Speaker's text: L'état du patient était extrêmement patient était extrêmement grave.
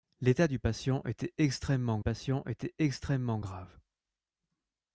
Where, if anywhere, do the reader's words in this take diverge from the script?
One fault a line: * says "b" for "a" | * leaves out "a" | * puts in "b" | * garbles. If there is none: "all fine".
all fine